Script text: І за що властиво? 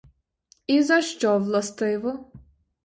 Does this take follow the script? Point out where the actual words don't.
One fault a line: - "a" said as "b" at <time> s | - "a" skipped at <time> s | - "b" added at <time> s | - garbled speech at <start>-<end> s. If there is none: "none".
none